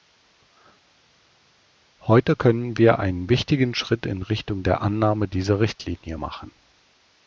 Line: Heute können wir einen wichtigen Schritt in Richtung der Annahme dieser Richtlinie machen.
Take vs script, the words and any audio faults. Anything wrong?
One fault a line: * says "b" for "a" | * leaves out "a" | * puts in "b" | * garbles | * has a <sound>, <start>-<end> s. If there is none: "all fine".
all fine